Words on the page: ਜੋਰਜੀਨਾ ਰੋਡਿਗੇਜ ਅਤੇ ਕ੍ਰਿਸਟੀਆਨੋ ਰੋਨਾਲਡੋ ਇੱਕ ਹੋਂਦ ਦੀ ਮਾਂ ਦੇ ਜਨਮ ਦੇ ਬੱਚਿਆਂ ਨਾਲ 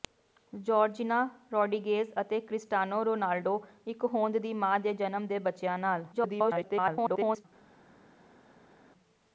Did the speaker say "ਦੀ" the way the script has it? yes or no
yes